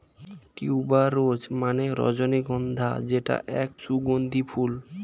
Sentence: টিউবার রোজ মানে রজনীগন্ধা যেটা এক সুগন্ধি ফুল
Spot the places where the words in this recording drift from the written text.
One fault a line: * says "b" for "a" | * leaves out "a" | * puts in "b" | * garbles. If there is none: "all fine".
all fine